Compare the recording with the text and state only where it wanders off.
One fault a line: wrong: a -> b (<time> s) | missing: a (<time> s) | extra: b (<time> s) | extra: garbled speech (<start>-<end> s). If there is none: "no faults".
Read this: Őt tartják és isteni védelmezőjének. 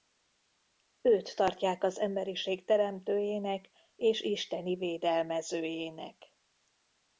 extra: az emberiség teremtőjének (1.8 s)